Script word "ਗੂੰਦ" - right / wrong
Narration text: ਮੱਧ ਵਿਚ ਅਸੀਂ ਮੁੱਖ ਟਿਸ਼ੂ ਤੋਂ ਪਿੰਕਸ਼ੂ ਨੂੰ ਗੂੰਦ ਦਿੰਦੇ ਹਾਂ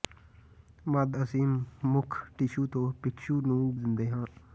wrong